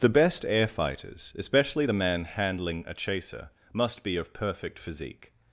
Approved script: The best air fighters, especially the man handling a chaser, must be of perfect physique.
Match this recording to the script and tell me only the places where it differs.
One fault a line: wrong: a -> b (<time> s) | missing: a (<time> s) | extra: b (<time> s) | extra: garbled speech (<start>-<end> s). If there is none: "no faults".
no faults